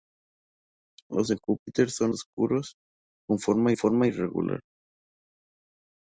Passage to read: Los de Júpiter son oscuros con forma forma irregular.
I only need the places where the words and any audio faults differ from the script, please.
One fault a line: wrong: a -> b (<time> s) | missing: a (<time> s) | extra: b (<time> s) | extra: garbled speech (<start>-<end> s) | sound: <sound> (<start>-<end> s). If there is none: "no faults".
no faults